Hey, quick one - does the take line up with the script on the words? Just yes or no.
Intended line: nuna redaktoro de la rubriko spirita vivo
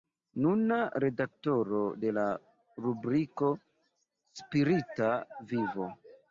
yes